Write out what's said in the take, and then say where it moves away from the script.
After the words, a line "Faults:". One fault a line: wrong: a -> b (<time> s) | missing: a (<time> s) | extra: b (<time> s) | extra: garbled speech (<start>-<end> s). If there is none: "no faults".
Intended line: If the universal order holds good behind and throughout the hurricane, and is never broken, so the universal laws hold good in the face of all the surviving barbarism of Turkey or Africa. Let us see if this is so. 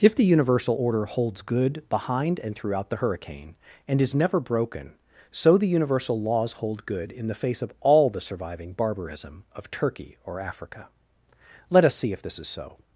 If the universal order holds good behind and throughout the hurricane, and is never broken, so the universal laws hold good in the face of all the surviving barbarism of Turkey or Africa. Let us see if this is so.
Faults:
no faults